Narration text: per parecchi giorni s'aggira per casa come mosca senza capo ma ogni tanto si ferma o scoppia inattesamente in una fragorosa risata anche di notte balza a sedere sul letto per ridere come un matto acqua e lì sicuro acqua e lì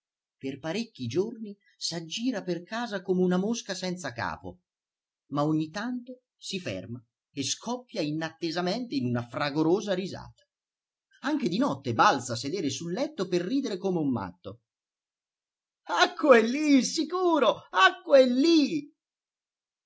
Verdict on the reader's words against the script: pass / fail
fail